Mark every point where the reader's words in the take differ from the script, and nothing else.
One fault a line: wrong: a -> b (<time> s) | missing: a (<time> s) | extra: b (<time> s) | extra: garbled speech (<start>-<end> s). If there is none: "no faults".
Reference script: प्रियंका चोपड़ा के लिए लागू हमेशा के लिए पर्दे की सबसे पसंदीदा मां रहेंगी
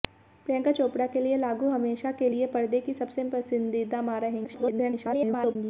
extra: garbled speech (4.4-5.6 s)